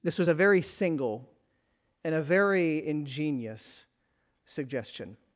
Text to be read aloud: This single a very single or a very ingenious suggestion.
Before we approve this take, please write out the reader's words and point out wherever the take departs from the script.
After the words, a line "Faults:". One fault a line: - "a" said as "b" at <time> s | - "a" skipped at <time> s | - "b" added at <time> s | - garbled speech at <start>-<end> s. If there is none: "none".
This was a very single and a very ingenious suggestion.
Faults:
- "single" said as "was" at 0.2 s
- "or" said as "and" at 2.0 s